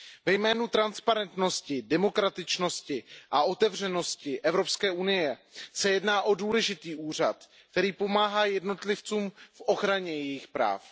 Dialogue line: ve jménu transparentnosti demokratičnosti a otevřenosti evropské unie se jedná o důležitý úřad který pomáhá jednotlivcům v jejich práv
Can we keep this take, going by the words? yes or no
no